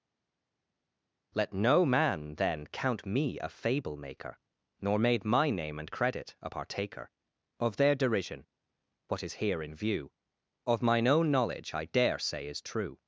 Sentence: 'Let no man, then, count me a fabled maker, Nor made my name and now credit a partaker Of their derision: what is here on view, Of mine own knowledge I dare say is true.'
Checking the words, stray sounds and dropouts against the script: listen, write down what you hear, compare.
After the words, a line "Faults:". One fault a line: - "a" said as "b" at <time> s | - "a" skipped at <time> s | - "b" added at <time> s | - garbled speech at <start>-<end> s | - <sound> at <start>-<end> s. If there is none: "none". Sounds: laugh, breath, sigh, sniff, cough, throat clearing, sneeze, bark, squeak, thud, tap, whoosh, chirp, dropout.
'Let no man, then, count me a fable maker, Nor made my name and credit a partaker Of their derision: what is here in view, Of mine own knowledge I dare say is true.'
Faults:
- "fabled" said as "fable" at 3.5 s
- "now" skipped at 5.9 s
- "on" said as "in" at 9.6 s